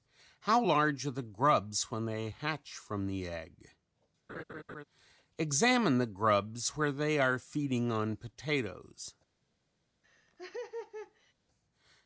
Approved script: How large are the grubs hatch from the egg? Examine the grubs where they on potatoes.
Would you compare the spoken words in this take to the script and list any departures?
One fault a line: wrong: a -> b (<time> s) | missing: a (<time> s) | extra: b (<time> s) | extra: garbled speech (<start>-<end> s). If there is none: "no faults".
extra: when they (1.9 s)
extra: are feeding (7.2 s)